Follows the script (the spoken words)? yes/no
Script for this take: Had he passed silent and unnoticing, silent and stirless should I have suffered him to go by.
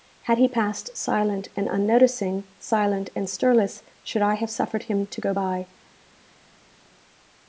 yes